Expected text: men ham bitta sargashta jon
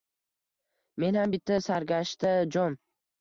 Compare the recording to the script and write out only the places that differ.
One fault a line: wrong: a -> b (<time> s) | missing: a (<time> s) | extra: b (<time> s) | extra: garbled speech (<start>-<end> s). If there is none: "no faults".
no faults